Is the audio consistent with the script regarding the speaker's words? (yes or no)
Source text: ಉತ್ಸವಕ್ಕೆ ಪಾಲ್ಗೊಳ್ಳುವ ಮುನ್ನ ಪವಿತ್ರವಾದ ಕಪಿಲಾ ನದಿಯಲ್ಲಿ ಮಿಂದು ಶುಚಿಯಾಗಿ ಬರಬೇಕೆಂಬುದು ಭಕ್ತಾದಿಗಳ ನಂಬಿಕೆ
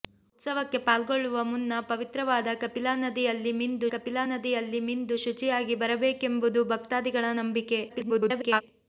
no